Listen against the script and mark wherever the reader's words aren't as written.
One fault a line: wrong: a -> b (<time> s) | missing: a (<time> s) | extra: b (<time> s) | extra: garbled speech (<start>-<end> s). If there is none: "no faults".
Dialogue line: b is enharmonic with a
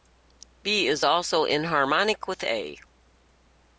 extra: also (1.0 s)